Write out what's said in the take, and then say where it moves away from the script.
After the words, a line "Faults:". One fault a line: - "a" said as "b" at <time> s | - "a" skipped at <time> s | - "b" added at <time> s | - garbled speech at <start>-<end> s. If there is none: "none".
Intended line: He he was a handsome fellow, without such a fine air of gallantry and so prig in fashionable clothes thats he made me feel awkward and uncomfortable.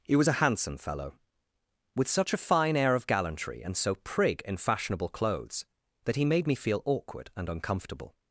He was a handsome fellow, with such a fine air of gallantry and so prig in fashionable clothes that he made me feel awkward and uncomfortable.
Faults:
- "he" skipped at 0.1 s
- "without" said as "with" at 1.9 s
- "thats" said as "that" at 6.0 s